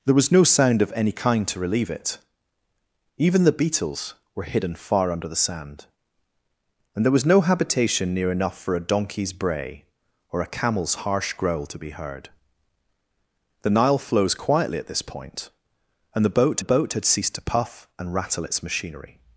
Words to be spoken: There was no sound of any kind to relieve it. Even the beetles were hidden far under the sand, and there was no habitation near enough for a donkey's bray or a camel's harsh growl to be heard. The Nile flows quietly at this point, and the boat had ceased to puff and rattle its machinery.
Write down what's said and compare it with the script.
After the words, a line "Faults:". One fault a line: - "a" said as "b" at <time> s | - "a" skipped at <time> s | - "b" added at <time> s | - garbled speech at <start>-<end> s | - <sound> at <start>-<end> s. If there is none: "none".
There was no sound of any kind to relieve it. Even the beetles were hidden far under the sand, and there was no habitation near enough for a donkey's bray or a camel's harsh growl to be heard. The Nile flows quietly at this point, and the boat the boat had ceased to puff and rattle its machinery.
Faults:
- "the boat" added at 16.6 s